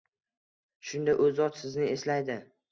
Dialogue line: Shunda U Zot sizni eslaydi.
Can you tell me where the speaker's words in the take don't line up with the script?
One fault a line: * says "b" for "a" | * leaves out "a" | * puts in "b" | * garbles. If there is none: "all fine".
all fine